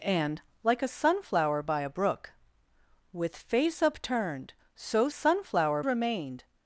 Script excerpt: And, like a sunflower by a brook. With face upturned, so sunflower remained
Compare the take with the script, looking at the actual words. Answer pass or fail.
pass